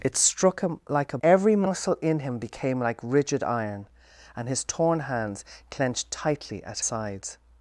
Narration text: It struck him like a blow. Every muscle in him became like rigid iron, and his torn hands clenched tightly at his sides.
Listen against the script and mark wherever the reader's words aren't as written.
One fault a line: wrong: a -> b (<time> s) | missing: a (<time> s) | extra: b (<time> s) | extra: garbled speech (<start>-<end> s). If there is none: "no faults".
missing: blow (1.2 s)
missing: his (6.8 s)